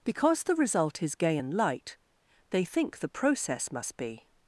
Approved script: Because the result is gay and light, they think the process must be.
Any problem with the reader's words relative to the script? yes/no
no